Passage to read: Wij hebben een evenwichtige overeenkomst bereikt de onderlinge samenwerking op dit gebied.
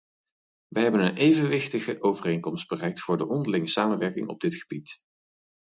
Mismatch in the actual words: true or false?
true